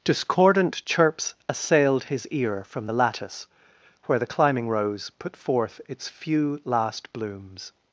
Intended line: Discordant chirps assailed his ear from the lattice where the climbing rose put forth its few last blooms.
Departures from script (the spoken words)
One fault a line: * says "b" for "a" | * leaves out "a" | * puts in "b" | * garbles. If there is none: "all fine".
all fine